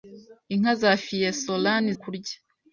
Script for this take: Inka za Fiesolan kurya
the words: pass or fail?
pass